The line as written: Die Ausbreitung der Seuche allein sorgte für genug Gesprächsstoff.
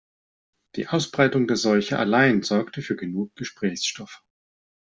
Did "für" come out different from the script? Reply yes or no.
no